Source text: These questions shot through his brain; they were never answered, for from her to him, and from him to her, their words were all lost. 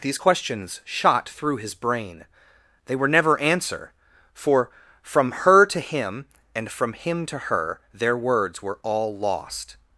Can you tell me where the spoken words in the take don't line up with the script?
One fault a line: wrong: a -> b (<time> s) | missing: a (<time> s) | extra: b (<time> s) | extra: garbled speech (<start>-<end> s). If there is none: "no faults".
wrong: answered -> answer (3.4 s)